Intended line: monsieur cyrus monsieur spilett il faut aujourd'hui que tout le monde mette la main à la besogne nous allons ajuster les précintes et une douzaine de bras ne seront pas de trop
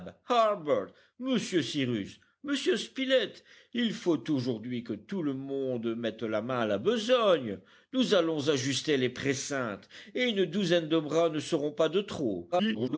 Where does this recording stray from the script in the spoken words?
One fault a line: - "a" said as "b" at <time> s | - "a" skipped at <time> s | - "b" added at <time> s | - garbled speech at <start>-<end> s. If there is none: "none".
- garbled speech at 12.5-13.0 s